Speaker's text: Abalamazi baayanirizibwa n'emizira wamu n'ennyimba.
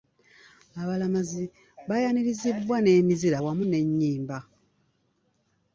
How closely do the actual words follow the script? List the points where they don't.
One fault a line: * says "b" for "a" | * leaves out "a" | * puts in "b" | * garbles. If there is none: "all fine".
all fine